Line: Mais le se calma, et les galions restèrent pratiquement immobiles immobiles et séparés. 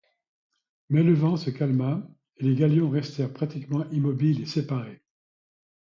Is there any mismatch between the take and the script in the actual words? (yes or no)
yes